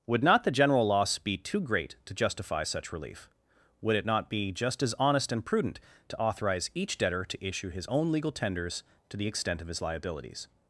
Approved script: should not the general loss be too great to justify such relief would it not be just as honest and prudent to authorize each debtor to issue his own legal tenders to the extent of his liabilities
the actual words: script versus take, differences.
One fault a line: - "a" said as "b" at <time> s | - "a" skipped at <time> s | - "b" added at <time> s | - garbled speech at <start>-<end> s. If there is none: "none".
- "should" said as "would" at 0.1 s